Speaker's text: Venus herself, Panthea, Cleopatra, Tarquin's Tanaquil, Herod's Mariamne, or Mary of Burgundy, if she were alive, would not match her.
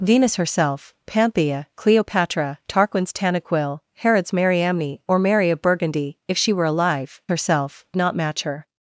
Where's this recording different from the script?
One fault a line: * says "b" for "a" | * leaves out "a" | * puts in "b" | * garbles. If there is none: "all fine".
* says "herself" for "would"